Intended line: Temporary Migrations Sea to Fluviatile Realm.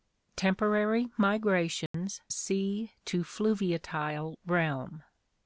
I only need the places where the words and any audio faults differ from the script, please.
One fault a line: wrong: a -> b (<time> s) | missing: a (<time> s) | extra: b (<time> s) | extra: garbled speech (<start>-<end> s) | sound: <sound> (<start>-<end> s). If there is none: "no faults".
sound: dropout (1.9-1.9 s)